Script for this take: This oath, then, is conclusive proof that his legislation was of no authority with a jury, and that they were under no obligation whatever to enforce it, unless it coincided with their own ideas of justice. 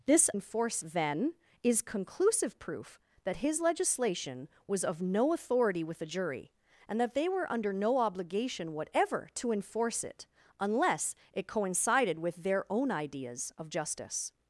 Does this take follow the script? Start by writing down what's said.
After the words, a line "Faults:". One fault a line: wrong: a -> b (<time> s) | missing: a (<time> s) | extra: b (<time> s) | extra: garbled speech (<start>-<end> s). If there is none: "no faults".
This enforce, then, is conclusive proof that his legislation was of no authority with a jury, and that they were under no obligation whatever to enforce it, unless it coincided with their own ideas of justice.
Faults:
wrong: oath -> enforce (0.3 s)